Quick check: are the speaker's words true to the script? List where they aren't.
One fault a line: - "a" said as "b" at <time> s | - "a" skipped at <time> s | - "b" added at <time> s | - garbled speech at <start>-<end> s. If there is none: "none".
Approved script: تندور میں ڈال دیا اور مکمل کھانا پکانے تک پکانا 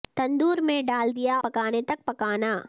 - "اور مکمل کھانا" skipped at 1.4 s